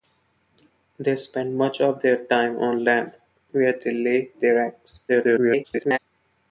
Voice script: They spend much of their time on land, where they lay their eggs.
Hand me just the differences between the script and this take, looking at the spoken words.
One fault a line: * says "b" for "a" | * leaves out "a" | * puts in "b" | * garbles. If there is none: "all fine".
* garbles